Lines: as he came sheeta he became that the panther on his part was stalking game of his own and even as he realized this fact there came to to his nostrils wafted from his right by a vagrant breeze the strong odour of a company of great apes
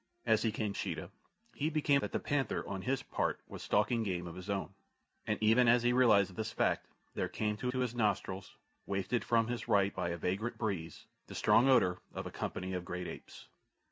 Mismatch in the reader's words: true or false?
false